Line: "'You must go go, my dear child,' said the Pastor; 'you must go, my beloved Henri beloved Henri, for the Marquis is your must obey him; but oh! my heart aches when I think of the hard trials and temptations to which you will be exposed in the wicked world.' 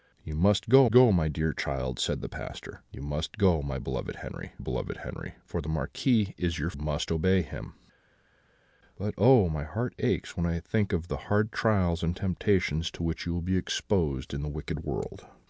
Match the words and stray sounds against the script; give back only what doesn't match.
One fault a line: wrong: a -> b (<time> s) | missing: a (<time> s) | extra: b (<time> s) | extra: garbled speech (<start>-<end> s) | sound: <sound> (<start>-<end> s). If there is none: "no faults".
no faults